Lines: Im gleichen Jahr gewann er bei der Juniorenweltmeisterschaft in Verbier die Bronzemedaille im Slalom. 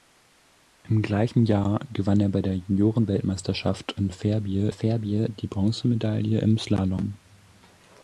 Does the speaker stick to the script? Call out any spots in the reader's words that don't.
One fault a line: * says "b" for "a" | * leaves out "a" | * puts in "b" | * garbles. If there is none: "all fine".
* puts in "Verbier"